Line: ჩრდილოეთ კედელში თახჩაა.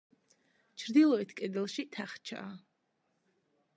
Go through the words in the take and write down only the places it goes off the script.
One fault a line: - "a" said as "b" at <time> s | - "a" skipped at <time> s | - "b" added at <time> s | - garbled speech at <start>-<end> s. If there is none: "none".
none